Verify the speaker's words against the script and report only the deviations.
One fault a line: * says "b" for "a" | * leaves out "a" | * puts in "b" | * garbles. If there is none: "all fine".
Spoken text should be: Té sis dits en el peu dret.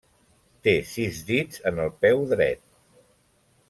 all fine